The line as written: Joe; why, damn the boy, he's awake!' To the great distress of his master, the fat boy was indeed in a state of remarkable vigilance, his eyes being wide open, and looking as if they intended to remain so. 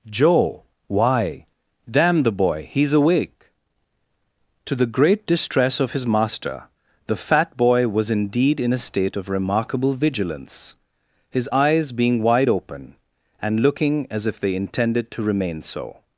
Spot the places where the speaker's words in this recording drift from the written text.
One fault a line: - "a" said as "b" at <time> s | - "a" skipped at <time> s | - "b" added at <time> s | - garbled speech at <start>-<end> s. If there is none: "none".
none